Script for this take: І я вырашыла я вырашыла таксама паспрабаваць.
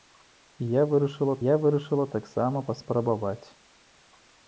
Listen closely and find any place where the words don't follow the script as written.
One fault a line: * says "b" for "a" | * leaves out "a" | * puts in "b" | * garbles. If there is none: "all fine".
all fine